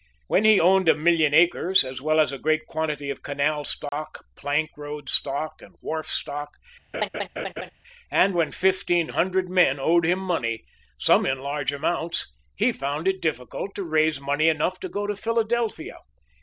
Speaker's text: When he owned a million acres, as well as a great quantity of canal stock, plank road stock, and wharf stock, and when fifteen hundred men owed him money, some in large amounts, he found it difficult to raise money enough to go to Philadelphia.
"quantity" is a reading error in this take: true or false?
false